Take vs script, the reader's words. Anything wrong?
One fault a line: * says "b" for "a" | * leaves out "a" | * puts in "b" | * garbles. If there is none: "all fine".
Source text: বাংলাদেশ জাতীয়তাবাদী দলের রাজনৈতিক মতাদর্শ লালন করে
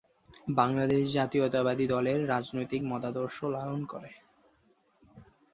all fine